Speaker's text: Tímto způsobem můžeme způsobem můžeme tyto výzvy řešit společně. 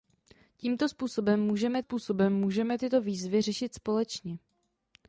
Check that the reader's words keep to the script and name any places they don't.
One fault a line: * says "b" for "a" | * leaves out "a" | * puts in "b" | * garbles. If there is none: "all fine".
all fine